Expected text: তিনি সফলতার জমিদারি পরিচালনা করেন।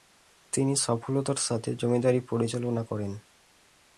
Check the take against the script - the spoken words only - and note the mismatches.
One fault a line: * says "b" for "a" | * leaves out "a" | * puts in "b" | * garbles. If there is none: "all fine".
* puts in "সাথে"